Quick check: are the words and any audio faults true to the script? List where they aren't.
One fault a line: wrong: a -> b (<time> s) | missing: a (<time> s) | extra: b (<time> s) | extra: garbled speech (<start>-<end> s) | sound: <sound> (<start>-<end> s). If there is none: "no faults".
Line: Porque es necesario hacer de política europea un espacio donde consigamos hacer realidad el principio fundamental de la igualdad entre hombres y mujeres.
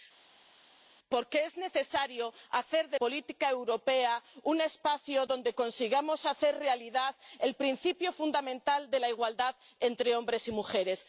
no faults